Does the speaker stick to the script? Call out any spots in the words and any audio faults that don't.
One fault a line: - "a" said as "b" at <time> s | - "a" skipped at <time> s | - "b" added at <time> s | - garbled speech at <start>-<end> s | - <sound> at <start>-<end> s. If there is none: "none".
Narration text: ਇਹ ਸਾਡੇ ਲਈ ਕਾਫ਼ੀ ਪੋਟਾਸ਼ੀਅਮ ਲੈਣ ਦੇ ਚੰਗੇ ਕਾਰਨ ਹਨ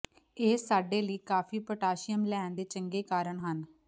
none